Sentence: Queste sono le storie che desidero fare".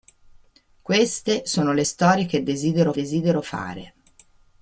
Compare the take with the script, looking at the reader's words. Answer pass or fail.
fail